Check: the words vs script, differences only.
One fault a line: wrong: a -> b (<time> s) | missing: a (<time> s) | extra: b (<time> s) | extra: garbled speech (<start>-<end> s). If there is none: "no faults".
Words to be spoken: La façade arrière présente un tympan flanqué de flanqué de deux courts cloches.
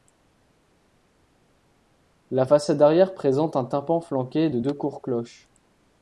missing: flanqué de (4.6 s)